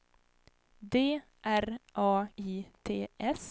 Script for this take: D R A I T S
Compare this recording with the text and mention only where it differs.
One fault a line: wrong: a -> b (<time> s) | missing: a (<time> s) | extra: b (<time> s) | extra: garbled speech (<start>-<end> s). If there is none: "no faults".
no faults